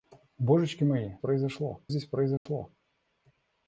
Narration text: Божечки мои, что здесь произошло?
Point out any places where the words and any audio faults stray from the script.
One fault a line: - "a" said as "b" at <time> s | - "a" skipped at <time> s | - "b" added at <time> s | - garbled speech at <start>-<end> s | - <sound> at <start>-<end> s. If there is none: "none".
- "что" said as "произошло" at 1.2 s
- dropout at 2.4-2.5 s